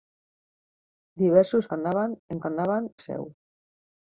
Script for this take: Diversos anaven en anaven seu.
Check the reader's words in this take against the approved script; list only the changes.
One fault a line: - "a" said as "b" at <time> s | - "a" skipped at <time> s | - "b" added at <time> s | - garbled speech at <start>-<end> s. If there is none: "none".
none